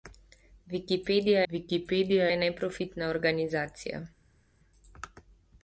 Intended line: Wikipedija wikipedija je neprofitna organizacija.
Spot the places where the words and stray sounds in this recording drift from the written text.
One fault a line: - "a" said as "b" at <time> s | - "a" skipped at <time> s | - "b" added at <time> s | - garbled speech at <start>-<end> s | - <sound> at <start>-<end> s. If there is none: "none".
none